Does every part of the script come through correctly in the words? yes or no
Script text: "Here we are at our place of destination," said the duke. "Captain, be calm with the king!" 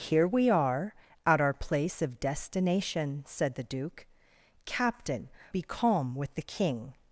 yes